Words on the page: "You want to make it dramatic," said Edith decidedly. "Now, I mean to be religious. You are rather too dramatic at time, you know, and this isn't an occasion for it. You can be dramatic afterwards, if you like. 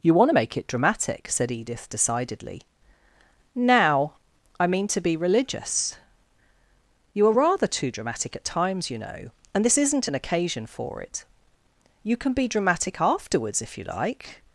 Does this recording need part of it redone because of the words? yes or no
yes